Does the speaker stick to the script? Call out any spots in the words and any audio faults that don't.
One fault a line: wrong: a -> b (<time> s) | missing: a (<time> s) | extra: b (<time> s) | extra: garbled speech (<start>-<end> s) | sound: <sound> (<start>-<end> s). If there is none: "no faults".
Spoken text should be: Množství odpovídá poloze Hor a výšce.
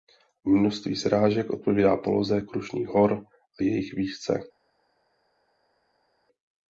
extra: srážek (0.9 s)
extra: Krušných (2.4 s)
extra: jejich (3.6 s)